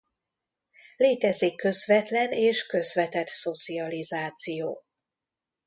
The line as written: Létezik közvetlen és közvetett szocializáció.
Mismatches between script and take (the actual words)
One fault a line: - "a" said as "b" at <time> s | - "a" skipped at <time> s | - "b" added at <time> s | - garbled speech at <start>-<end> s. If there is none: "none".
none